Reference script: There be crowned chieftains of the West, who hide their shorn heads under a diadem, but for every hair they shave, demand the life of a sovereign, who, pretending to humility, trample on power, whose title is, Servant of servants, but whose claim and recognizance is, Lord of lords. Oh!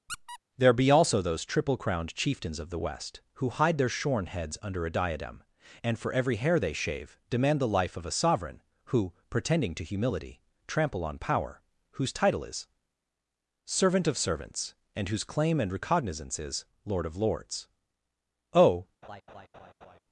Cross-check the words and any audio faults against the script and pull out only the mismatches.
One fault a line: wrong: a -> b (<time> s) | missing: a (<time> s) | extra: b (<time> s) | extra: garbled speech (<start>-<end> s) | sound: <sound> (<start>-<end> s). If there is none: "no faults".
sound: squeak (0.1-0.4 s)
extra: also those triple (0.9 s)
wrong: but -> and (5.8 s)
wrong: but -> and (15.0 s)
sound: laugh (19.0-20.0 s)